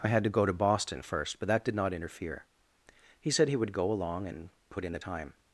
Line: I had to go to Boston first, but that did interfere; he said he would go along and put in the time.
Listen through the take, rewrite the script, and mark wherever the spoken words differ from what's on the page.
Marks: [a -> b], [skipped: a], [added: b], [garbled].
I had to go to Boston first, but that did [added: not] interfere; he said he would go along and put in the time.